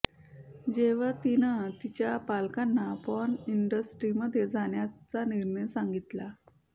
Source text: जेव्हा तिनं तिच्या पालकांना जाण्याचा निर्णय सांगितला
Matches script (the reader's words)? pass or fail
fail